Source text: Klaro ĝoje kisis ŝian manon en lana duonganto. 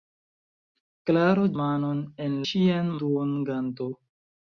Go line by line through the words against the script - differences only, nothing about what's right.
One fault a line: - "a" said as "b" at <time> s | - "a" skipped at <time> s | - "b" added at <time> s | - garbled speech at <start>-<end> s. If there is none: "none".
- "ĝoje kisis ŝian" skipped at 1.4 s
- "lana" said as "ŝian" at 2.5 s